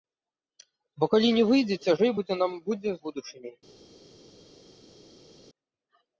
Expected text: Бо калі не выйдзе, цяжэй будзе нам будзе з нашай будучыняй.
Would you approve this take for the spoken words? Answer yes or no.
no